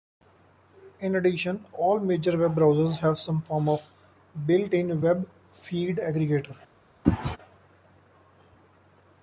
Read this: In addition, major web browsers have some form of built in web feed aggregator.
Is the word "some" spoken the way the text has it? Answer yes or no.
yes